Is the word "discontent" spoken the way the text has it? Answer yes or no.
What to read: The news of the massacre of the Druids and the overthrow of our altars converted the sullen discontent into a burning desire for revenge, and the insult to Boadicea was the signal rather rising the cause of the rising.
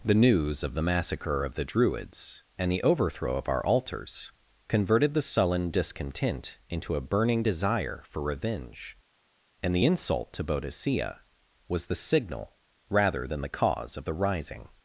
yes